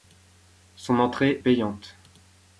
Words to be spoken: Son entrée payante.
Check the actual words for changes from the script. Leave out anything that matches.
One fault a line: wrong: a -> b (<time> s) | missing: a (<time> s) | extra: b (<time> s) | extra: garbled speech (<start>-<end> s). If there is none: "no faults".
no faults